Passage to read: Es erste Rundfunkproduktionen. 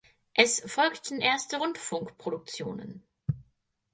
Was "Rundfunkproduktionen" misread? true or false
false